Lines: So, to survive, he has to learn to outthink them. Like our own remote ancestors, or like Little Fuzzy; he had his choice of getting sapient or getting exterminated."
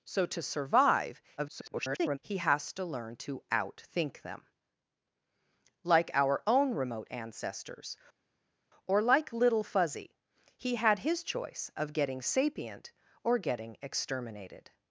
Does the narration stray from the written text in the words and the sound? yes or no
yes